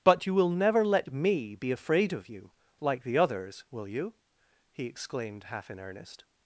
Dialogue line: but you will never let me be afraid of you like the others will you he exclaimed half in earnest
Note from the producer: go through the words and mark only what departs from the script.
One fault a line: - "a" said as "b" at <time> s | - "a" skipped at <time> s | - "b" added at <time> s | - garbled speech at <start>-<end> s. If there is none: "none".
none